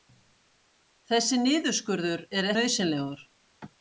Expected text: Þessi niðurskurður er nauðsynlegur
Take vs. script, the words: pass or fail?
pass